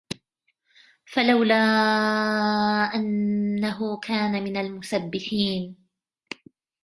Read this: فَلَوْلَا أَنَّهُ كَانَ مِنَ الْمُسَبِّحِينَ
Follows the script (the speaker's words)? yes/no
yes